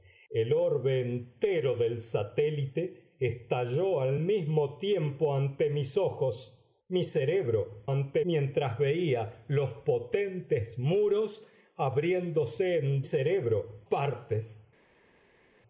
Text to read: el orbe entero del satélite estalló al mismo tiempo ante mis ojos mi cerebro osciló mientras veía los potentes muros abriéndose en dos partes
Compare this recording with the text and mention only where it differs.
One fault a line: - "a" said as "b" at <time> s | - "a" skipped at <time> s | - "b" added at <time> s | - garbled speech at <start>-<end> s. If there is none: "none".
- "osciló" said as "ante" at 7.9 s
- "dos" said as "cerebro" at 13.0 s